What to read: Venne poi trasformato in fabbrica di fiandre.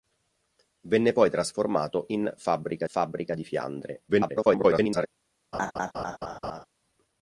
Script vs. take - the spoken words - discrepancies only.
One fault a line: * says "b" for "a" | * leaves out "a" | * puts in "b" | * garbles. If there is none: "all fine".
* puts in "fabbrica"
* garbles